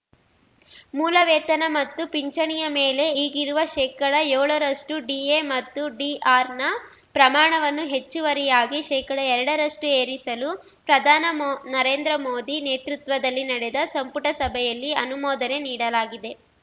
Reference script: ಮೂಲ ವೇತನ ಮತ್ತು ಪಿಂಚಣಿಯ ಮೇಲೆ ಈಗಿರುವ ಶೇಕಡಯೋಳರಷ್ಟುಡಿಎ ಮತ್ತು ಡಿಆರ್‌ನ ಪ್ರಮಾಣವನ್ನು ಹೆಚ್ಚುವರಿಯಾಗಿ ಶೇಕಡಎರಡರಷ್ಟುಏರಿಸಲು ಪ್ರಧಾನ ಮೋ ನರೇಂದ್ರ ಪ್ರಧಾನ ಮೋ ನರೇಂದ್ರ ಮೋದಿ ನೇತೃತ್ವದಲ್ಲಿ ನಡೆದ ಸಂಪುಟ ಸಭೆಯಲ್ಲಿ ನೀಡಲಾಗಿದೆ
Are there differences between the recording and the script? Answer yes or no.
yes